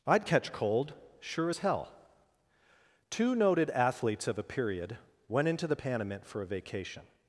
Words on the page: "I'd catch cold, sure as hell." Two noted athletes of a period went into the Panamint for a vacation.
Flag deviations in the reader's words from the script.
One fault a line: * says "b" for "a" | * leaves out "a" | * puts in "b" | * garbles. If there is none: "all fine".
all fine